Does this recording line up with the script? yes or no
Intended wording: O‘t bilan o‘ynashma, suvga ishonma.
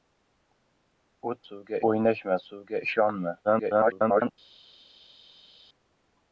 no